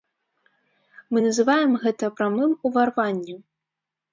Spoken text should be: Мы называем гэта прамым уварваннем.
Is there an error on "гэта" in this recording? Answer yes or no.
no